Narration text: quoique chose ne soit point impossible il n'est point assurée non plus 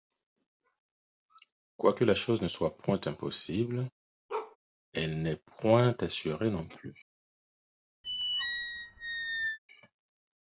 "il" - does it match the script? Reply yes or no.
no